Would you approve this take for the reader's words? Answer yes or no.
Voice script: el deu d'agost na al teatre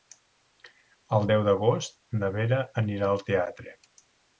no